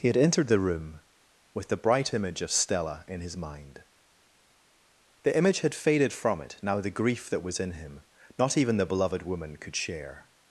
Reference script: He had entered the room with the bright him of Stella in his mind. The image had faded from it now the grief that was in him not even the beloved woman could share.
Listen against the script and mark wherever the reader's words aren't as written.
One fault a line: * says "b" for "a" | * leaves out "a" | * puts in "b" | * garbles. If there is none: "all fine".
* says "image" for "him"